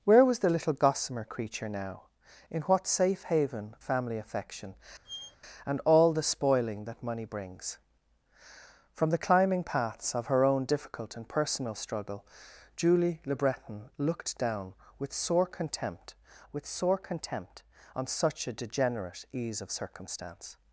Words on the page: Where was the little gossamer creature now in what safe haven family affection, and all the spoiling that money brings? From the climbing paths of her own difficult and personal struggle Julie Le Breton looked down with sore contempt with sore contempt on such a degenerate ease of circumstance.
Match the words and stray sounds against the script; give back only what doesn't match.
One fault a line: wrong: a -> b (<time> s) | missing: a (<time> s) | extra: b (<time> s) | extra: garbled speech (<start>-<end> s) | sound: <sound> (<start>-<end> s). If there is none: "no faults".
sound: squeak (5.0-5.4 s)